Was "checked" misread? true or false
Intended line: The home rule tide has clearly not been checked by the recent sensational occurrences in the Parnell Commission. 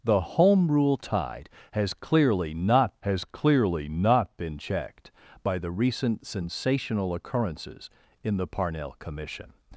false